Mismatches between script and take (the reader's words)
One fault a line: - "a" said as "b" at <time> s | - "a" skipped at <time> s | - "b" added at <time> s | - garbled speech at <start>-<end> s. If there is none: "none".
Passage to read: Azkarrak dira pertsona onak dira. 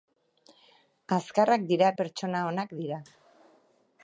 none